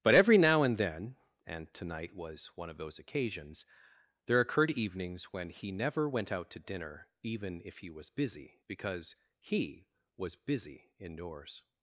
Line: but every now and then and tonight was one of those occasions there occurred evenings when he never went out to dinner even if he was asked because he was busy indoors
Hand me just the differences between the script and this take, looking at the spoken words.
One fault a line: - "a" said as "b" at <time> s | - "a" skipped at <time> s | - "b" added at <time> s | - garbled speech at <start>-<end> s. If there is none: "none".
- "asked" said as "busy" at 8.0 s